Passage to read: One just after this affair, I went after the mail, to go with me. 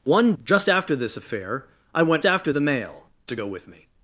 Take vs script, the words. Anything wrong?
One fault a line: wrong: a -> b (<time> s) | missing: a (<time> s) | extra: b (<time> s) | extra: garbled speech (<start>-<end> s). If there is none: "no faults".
no faults